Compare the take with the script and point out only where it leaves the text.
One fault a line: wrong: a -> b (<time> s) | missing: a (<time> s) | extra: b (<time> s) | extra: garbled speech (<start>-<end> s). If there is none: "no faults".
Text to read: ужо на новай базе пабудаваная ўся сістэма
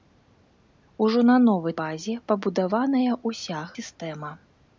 no faults